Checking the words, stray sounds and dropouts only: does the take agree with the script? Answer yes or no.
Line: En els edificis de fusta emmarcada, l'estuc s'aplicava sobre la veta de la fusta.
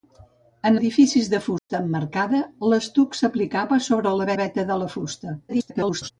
no